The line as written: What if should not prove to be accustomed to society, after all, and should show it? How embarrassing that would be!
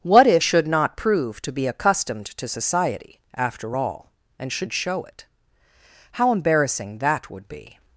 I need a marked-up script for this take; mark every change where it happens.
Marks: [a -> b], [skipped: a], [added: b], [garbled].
What if should not prove to be accustomed to society, after all, and should show it? How embarrassing that would be!